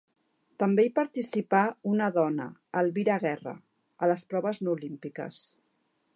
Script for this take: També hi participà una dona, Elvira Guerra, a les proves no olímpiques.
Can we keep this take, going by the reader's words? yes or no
yes